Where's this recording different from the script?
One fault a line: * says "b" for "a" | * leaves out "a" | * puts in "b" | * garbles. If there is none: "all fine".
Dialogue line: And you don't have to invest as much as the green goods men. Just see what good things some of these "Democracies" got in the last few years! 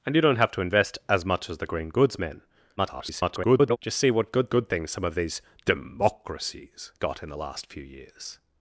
* garbles
* puts in "good"